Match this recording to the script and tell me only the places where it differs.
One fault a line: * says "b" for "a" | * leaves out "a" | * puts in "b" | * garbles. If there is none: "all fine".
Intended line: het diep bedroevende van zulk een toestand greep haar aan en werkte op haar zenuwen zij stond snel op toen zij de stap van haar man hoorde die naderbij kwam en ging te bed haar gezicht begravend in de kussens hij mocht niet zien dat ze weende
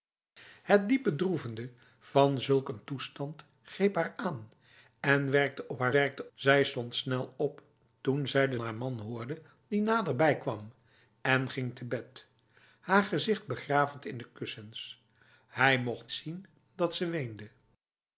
* says "werkte" for "zenuwen"
* leaves out "stap van"
* leaves out "niet"